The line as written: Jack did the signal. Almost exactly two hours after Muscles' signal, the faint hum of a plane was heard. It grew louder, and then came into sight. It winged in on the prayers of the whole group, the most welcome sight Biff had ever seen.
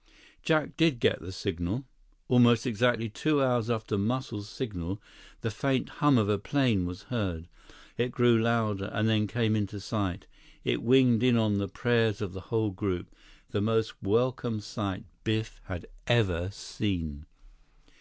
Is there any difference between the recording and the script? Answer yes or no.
yes